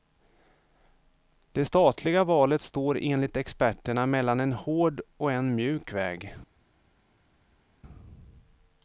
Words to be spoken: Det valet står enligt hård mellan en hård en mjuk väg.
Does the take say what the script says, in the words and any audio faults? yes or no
no